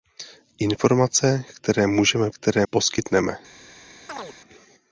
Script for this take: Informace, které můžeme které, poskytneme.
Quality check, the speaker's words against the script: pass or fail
pass